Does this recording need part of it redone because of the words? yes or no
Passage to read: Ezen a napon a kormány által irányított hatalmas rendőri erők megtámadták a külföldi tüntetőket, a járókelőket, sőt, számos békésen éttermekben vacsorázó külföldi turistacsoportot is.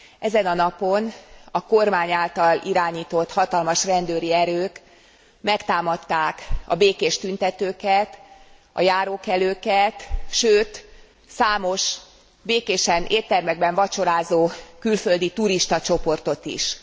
yes